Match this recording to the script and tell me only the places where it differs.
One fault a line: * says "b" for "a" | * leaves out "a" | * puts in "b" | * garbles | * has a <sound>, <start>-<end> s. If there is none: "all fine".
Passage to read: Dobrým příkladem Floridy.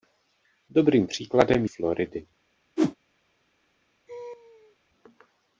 * has a whoosh, 2.8-3.0 s
* has a laugh, 4.1-4.8 s